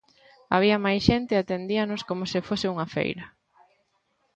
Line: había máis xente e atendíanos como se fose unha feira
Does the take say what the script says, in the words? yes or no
yes